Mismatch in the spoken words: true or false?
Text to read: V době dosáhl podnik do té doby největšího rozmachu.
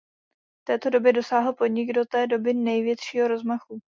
true